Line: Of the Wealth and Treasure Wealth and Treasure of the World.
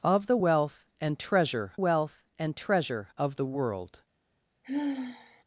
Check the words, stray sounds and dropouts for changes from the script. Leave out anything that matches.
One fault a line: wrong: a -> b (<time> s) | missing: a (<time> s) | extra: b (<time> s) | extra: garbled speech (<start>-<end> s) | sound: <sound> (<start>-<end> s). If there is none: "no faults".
sound: sigh (4.6-5.4 s)